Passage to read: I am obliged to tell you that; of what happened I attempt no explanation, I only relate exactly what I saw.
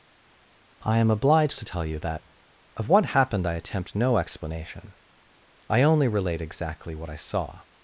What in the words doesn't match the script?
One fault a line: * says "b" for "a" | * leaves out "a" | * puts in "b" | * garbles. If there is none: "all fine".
all fine